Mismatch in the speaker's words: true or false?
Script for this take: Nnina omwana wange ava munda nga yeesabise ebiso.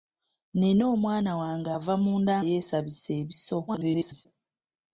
true